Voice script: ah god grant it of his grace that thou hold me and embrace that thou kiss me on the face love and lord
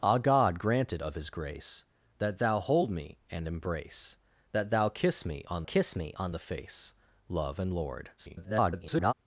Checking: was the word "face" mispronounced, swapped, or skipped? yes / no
no